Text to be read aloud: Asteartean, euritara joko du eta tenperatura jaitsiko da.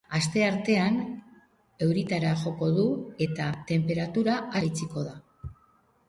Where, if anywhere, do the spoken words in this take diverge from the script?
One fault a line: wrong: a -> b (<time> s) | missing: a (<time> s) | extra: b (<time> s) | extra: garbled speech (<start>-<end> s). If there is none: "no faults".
no faults